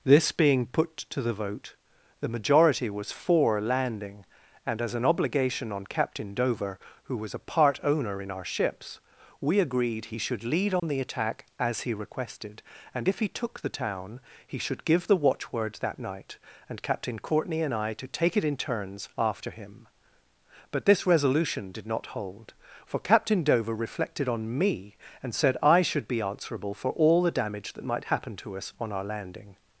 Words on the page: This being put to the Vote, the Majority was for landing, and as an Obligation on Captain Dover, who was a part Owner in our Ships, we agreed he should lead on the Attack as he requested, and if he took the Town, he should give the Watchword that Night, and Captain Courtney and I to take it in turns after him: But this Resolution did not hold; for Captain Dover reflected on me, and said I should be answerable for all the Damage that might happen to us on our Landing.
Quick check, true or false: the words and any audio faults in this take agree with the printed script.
false